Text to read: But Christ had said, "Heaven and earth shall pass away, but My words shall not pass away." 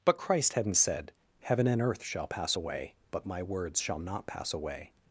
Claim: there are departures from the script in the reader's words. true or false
true